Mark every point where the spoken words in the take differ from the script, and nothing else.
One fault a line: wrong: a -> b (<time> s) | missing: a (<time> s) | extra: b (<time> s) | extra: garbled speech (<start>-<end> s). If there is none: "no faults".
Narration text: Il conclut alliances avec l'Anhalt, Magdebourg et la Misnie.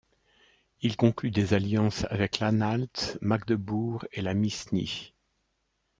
extra: des (1.3 s)